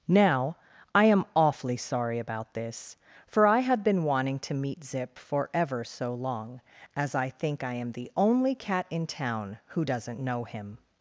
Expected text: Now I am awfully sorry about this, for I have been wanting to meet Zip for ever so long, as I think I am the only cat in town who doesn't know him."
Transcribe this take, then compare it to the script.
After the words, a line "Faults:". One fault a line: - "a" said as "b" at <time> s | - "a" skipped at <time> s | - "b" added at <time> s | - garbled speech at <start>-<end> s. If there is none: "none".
Now I am awfully sorry about this, for I have been wanting to meet Zip for ever so long, as I think I am the only cat in town who doesn't know him."
Faults:
none